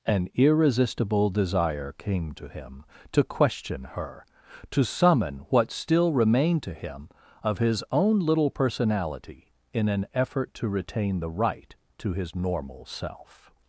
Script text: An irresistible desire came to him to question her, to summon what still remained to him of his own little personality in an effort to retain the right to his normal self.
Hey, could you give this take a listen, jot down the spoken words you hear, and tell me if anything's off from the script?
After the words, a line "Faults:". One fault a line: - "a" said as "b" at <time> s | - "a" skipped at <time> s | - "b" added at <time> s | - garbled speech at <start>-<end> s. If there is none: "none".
An irresistible desire came to him to question her, to summon what still remained to him of his own little personality in an effort to retain the right to his normal self.
Faults:
none